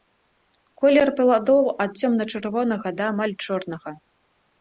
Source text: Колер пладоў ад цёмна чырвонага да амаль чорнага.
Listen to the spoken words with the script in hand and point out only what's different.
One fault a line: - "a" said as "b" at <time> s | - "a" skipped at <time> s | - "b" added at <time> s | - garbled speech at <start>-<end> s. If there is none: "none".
none